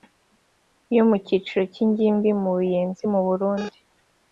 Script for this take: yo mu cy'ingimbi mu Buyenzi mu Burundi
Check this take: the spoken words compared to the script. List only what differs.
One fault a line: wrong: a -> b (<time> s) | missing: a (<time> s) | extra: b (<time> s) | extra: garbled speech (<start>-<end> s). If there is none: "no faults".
extra: cyiciro (1.2 s)